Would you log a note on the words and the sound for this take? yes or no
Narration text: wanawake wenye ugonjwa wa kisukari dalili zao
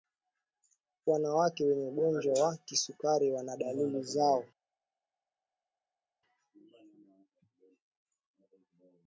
yes